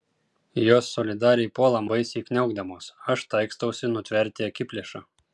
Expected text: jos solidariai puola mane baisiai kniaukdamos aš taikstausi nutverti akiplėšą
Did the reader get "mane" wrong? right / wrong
wrong